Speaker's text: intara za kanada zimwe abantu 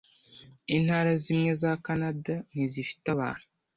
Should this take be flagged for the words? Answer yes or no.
yes